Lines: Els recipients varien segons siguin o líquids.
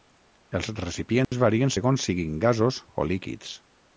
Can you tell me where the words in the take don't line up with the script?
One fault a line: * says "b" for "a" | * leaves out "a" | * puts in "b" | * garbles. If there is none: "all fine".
* puts in "gasos"